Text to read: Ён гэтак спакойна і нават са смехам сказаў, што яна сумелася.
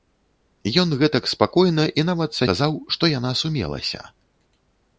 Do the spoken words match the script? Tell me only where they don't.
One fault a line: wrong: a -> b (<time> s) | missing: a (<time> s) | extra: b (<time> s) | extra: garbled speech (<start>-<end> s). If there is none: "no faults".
missing: смехам (2.5 s)